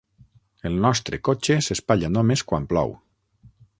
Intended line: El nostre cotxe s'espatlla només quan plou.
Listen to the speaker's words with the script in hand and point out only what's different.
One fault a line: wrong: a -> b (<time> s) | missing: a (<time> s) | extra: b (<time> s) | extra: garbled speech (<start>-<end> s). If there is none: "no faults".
no faults